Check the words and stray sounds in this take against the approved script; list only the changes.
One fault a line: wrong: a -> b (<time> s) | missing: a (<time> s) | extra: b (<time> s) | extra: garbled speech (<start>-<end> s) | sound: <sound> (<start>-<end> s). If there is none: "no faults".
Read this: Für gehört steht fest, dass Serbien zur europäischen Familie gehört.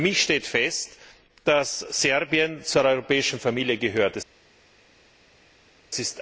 wrong: gehört -> mich (0.1 s)